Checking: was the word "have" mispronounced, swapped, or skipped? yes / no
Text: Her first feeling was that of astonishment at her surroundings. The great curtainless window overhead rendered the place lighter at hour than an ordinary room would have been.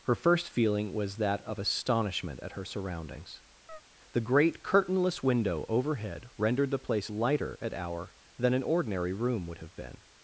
no